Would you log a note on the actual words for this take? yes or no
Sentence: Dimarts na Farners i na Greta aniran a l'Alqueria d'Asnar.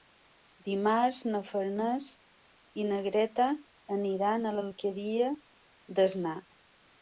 no